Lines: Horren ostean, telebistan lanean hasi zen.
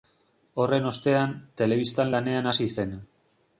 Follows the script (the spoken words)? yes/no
yes